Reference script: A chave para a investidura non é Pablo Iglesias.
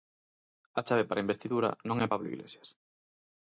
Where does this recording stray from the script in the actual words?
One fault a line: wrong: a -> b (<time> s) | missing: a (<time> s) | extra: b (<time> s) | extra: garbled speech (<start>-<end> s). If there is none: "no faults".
no faults